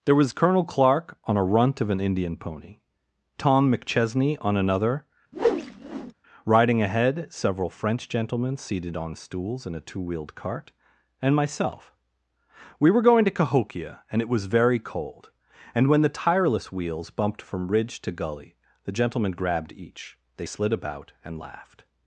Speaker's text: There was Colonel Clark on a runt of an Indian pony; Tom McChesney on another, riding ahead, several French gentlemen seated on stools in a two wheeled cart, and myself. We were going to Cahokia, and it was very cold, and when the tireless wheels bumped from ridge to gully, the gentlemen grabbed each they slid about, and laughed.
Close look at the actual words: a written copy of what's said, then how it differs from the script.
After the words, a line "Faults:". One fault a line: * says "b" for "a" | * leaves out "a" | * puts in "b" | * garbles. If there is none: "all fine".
There was Colonel Clark on a runt of an Indian pony; Tom McChesney on another, riding ahead, several French gentlemen seated on stools in a two wheeled cart, and myself. We were going to Cahokia, and it was very cold, and when the tireless wheels bumped from ridge to gully, the gentlemen grabbed each they slid about, and laughed.
Faults:
all fine